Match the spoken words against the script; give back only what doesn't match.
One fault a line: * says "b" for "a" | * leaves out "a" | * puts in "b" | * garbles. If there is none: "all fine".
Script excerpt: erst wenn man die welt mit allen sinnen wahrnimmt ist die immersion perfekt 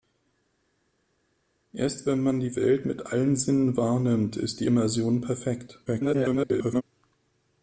* garbles